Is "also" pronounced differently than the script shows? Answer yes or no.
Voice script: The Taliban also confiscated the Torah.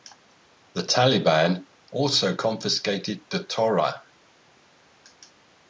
no